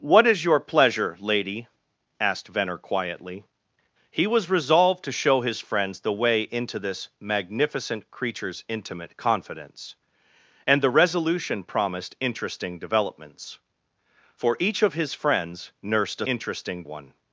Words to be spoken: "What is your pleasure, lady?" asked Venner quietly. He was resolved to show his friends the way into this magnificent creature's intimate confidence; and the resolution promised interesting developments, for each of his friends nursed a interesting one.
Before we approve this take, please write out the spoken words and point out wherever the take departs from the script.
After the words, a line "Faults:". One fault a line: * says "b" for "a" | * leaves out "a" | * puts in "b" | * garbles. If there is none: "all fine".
"What is your pleasure, lady?" asked Venner quietly. He was resolved to show his friends the way into this magnificent creature's intimate confidence; and the resolution promised interesting developments, for each of his friends nursed a interesting one.
Faults:
all fine